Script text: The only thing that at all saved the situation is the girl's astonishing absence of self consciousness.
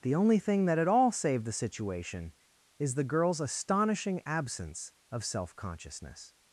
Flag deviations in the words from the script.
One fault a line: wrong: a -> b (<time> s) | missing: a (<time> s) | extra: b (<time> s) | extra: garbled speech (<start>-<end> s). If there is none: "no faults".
no faults